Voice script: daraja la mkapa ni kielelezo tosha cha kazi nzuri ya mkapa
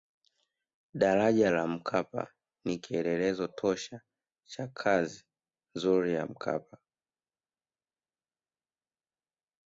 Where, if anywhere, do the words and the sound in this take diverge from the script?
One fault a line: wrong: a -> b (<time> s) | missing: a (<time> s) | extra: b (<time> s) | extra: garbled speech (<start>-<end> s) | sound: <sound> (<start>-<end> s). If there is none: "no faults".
no faults